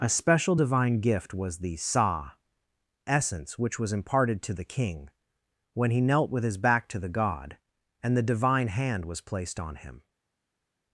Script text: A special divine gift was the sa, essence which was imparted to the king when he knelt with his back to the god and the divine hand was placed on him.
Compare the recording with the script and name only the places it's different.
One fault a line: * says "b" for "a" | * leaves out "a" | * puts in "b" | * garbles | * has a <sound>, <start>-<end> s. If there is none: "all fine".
all fine